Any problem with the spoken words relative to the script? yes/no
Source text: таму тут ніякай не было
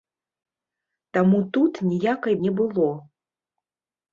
no